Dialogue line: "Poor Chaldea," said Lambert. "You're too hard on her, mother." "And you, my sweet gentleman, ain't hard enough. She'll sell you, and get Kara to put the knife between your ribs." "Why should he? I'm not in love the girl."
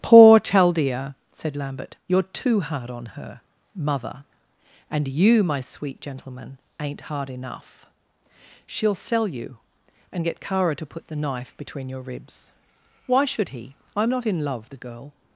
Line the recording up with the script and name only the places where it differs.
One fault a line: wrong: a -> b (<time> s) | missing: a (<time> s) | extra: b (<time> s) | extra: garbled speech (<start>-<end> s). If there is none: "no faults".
no faults